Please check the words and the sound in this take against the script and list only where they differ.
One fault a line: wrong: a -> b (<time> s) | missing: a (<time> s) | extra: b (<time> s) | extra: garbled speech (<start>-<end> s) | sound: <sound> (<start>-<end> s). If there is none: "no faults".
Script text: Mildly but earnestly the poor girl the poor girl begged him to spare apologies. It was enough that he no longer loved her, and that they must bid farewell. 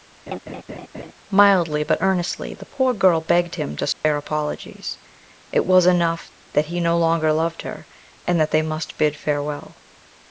sound: laugh (0.3-1.1 s)
missing: the poor girl (3.2 s)
sound: dropout (3.9-4.0 s)